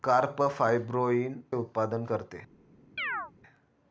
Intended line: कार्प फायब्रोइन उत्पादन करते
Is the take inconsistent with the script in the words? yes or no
no